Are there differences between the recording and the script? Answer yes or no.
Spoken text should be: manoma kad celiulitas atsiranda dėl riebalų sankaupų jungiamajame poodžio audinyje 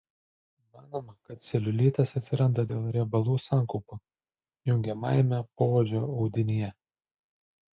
no